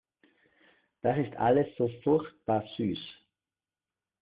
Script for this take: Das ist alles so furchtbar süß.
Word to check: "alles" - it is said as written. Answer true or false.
true